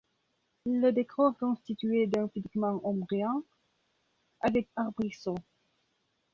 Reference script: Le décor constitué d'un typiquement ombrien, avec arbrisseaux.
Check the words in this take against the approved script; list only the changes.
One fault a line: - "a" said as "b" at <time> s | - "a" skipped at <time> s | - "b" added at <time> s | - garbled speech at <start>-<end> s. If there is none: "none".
none